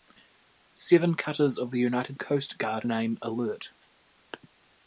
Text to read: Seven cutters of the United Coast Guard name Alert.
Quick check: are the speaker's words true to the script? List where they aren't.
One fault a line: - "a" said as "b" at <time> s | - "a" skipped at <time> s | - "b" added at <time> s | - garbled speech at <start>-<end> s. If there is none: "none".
none